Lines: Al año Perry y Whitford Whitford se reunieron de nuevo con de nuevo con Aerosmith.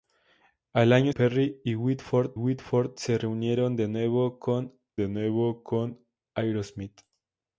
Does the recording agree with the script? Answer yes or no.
yes